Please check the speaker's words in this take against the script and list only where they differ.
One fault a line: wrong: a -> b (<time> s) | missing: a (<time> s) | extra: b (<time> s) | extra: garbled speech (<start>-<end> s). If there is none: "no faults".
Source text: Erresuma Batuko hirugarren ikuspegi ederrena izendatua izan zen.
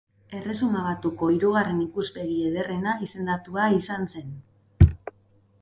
no faults